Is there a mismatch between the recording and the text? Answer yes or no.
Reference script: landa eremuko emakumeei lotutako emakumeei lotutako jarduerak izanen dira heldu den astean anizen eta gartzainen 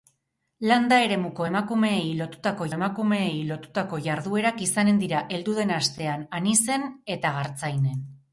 no